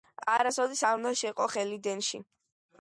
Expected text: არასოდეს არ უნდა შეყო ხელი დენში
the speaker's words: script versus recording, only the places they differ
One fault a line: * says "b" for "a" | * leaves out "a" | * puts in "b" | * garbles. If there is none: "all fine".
all fine